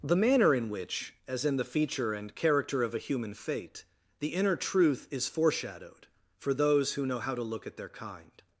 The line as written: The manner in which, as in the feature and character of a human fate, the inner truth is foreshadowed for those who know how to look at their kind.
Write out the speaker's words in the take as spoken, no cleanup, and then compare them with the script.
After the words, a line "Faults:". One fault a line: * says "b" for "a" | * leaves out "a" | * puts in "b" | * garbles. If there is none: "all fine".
The manner in which, as in the feature and character of a human fate, the inner truth is foreshadowed for those who know how to look at their kind.
Faults:
all fine